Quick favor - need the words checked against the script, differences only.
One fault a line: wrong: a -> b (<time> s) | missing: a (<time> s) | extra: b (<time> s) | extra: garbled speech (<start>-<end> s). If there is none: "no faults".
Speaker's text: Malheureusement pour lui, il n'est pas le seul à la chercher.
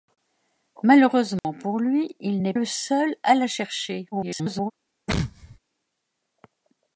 missing: pas (2.5 s)
extra: garbled speech (4.1-4.7 s)